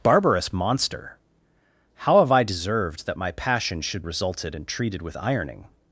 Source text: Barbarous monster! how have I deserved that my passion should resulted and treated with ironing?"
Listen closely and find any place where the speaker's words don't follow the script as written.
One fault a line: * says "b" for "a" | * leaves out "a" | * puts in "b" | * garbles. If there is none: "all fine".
all fine